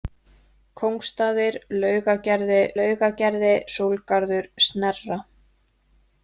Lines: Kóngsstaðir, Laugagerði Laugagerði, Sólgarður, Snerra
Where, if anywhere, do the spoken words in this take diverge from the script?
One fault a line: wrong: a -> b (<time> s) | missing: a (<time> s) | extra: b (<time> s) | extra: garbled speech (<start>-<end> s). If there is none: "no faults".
no faults